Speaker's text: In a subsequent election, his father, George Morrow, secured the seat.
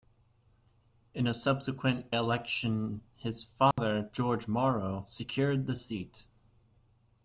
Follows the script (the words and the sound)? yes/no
no